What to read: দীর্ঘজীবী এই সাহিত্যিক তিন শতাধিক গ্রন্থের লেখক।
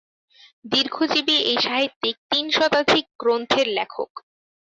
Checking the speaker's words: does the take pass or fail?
pass